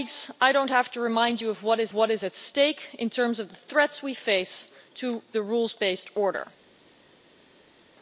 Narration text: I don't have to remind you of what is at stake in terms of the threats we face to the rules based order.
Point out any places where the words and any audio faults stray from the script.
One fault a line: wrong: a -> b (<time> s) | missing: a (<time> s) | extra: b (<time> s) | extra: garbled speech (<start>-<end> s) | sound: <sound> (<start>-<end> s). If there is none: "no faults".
extra: what is (1.9 s)